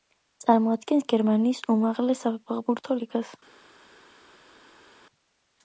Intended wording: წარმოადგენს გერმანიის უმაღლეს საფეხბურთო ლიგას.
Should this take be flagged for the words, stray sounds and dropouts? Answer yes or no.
no